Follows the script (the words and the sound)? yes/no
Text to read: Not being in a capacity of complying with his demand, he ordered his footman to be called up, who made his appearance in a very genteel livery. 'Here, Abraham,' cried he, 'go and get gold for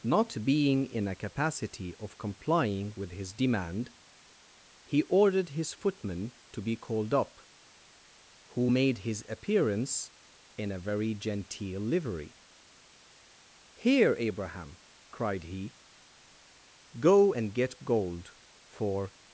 yes